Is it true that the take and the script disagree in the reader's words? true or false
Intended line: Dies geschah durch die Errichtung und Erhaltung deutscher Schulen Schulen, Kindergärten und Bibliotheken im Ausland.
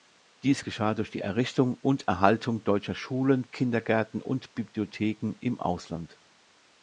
true